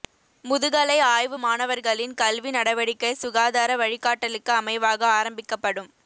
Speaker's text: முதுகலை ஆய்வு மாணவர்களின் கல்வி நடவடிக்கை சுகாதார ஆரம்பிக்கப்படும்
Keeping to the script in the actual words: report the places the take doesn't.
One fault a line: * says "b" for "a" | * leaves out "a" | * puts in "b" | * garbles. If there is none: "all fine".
* puts in "வழிகாட்டலுக்கு அமைவாக"